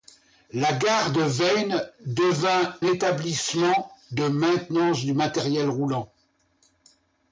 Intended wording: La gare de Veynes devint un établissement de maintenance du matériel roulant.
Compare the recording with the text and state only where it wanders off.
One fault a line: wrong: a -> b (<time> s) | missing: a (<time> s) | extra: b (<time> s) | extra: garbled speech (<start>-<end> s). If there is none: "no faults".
missing: un (2.8 s)